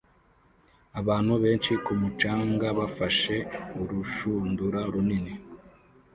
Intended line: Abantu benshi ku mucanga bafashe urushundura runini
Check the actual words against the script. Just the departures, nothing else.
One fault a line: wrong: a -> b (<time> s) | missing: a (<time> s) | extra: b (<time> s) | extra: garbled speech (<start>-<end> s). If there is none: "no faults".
no faults